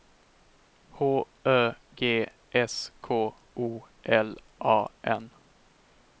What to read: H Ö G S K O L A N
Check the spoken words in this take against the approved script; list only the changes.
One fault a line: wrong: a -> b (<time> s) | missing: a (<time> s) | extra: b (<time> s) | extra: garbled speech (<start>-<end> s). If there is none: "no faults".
no faults